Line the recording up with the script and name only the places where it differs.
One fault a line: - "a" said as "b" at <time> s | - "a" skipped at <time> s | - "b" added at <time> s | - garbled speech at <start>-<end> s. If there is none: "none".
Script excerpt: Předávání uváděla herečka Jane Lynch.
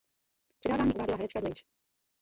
- "Jane" skipped at 1.4 s